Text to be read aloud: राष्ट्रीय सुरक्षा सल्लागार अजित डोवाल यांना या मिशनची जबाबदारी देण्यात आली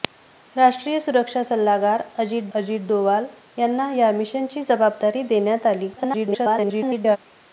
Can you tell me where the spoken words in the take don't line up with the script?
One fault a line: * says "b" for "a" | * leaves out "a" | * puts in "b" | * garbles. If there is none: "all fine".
* puts in "अजित"
* garbles